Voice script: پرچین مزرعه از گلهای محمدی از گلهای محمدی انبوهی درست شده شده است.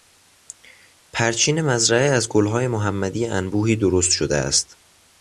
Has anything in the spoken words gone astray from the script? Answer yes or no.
yes